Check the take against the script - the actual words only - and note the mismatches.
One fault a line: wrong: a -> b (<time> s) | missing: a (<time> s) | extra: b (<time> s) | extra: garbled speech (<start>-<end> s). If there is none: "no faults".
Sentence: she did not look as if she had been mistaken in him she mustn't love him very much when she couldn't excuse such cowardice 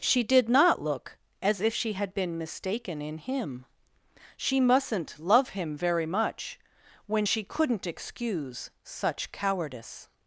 no faults